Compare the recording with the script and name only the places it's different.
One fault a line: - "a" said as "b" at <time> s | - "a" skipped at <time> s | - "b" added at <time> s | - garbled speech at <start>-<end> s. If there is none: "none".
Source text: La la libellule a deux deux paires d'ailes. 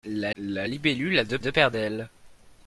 none